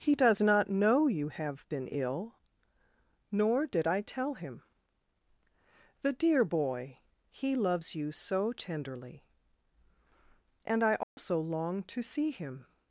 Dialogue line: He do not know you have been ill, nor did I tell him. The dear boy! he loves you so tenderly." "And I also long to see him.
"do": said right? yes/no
no